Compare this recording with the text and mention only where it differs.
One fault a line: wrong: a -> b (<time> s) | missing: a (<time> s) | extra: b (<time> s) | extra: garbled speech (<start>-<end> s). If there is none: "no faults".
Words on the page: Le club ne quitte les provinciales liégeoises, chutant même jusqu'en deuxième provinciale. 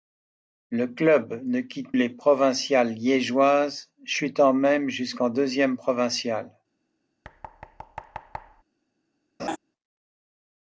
no faults